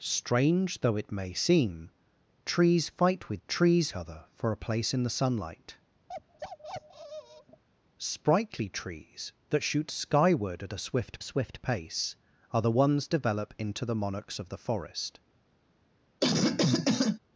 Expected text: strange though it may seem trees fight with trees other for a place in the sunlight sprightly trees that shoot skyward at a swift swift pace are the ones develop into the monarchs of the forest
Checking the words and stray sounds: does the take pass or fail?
fail